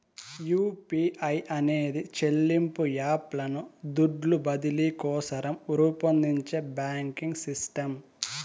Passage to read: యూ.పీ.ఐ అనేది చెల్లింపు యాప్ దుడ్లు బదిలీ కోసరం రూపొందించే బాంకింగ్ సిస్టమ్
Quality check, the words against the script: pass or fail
fail